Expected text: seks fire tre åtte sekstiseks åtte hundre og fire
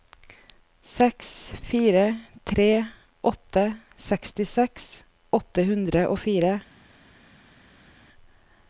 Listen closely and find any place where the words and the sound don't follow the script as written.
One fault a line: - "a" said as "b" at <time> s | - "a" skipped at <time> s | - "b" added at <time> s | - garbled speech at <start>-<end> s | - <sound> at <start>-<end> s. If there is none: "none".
none